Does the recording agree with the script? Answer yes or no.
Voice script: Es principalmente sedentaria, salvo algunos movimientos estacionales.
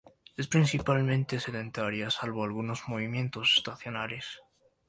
yes